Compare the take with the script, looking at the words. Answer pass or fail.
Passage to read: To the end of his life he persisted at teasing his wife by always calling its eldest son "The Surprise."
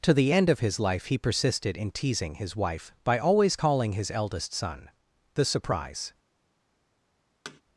fail